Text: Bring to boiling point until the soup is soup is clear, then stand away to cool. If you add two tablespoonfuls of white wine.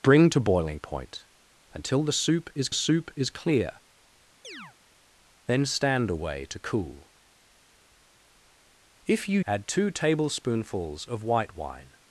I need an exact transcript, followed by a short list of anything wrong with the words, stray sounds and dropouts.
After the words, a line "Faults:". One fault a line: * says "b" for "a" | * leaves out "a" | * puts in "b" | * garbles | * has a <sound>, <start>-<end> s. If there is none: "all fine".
Bring to boiling point until the soup is soup is clear, then stand away to cool. If you add two tablespoonfuls of white wine.
Faults:
* has a chirp, 4.4-4.8 s